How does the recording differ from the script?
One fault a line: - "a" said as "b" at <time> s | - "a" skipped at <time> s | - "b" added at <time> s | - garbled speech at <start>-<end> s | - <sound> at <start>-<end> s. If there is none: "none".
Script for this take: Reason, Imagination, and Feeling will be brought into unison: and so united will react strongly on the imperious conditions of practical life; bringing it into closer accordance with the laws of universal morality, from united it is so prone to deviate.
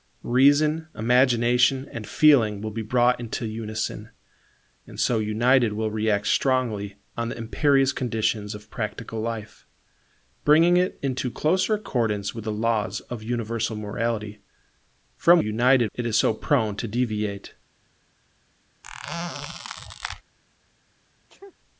- squeak at 18.8-20.2 s
- sneeze at 21.3-21.6 s